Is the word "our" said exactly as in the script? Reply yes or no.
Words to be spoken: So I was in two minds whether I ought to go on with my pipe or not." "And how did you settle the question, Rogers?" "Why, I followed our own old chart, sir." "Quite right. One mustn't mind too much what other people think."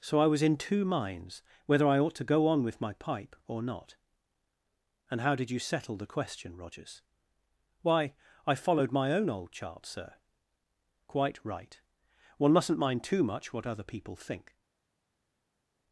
no